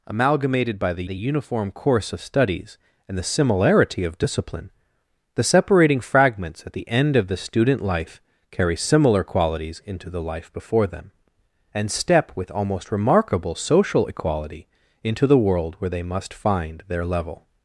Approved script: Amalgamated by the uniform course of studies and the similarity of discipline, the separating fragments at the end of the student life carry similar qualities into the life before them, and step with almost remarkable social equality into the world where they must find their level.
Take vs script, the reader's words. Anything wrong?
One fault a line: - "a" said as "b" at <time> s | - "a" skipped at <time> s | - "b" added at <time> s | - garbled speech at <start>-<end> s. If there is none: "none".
- "the" added at 1.0 s